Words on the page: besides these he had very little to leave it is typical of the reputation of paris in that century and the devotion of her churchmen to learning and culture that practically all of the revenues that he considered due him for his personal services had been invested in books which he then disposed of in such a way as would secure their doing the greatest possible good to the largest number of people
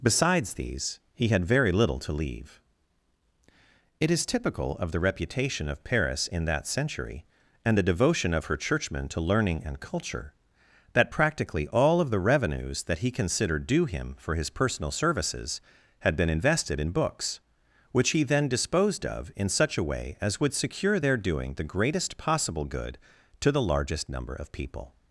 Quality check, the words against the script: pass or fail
pass